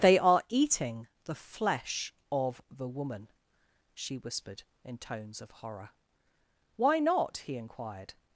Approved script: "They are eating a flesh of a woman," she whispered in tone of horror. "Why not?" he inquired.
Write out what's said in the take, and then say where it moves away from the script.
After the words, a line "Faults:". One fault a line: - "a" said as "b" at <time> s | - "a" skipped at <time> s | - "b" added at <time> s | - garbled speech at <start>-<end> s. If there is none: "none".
"They are eating the flesh of the woman," she whispered in tones of horror. "Why not?" he inquired.
Faults:
- "a" said as "the" at 1.2 s
- "a" said as "the" at 2.7 s
- "tone" said as "tones" at 5.0 s